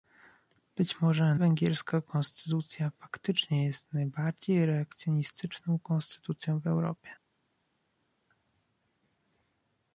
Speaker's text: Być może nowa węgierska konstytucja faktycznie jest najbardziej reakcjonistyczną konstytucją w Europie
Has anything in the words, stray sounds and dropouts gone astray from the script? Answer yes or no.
yes